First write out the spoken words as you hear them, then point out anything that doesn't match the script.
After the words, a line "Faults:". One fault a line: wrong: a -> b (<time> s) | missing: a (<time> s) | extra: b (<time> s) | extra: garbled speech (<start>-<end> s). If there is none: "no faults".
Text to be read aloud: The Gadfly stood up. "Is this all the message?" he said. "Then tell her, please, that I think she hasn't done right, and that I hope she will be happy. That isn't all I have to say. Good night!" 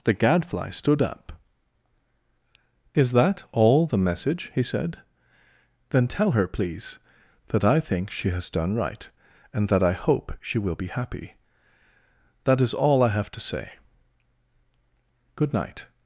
The Gadfly stood up. "Is that all the message?" he said. "Then tell her, please, that I think she has done right, and that I hope she will be happy. That is all I have to say. Good night!"
Faults:
wrong: this -> that (3.1 s)
wrong: hasn't -> has (8.3 s)
wrong: isn't -> is (12.6 s)